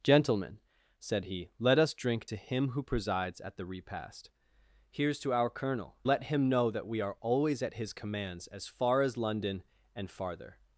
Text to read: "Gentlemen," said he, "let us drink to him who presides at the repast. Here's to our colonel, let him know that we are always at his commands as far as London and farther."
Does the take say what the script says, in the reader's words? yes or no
yes